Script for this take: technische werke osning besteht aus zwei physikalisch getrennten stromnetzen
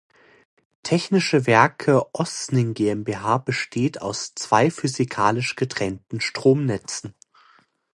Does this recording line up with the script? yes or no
no